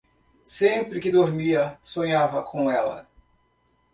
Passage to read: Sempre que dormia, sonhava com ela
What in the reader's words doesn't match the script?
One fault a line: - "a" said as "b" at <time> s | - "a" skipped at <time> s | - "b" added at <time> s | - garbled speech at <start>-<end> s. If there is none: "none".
none